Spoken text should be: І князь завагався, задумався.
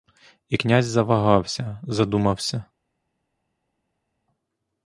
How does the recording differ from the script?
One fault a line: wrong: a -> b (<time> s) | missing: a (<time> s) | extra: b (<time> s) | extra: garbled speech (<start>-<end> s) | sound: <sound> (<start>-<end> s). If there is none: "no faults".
no faults